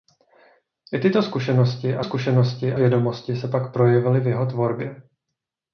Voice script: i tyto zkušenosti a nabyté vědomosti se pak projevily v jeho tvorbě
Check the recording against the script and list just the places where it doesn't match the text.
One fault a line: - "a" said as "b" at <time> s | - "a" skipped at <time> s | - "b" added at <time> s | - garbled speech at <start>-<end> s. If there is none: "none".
- "nabyté" said as "zkušenosti" at 2.0 s